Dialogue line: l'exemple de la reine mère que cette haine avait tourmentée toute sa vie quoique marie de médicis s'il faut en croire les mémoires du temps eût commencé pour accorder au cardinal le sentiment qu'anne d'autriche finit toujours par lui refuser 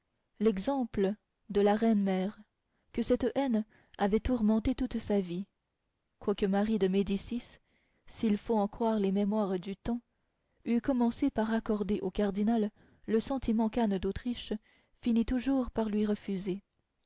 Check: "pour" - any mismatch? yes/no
yes